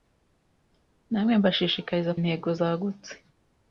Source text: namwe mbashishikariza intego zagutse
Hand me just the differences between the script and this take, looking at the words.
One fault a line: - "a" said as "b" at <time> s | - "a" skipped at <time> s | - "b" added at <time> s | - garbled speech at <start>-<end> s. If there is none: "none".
none